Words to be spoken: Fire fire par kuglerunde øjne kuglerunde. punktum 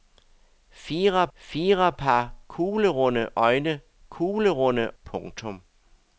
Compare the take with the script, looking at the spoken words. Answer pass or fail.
pass